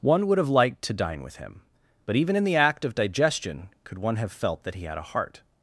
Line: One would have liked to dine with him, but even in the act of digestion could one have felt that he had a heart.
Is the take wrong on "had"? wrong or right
right